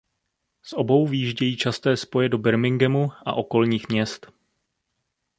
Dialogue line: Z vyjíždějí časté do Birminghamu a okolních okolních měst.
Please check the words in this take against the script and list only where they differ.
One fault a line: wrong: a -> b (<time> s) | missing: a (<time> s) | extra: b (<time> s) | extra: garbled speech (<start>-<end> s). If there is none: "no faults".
extra: obou (0.7 s)
extra: spoje (2.0 s)
missing: okolních (3.9 s)